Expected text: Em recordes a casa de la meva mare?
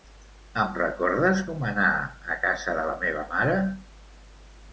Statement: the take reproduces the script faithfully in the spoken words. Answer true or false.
false